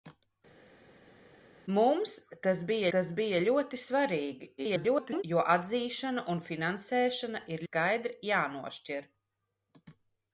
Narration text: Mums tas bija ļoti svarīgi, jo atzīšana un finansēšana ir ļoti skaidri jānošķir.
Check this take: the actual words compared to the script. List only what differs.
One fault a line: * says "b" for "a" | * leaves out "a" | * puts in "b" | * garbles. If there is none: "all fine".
* puts in "tas bija"
* garbles
* leaves out "ļoti"